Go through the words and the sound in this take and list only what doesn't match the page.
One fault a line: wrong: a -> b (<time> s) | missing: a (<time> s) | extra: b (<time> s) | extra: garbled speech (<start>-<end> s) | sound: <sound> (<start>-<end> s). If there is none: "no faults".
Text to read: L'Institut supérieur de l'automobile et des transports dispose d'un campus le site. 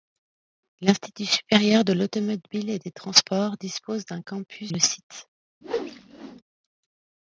sound: whoosh (5.6-6.4 s)